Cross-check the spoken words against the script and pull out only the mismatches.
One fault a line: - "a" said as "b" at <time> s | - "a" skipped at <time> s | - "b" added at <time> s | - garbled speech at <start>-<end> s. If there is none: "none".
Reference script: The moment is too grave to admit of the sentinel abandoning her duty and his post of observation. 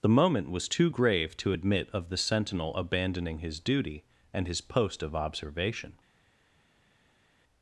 - "is" said as "was" at 0.5 s
- "her" said as "his" at 3.4 s